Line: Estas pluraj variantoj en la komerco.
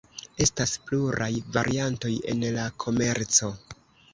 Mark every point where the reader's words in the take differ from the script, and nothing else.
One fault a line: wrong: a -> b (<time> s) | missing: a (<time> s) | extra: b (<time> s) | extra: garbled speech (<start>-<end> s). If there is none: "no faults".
no faults